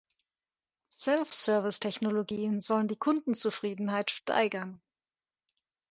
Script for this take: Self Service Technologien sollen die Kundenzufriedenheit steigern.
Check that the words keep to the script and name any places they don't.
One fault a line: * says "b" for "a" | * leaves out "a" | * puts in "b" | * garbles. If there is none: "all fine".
all fine